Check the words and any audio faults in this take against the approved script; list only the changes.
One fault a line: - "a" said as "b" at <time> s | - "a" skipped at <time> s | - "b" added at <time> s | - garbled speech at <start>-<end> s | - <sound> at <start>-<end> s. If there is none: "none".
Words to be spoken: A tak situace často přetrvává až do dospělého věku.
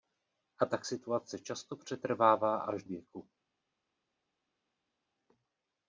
- "do dospělého" skipped at 2.8 s